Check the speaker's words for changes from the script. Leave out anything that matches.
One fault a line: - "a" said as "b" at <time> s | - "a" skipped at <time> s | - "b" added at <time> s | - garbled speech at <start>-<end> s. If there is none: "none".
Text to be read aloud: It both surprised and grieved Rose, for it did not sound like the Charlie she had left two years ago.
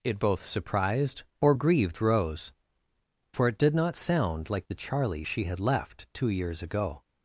- "and" said as "or" at 1.4 s